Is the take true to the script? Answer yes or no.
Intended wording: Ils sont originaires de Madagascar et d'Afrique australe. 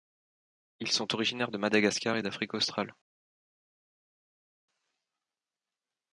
yes